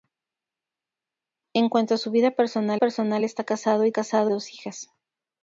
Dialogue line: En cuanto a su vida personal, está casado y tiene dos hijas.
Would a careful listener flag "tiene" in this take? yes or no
yes